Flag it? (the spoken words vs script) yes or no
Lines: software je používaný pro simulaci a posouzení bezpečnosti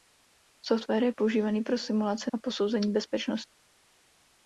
no